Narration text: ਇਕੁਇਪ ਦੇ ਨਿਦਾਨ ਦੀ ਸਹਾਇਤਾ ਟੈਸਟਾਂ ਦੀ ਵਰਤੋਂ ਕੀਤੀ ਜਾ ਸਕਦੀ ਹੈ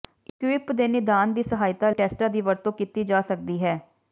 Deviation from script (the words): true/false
false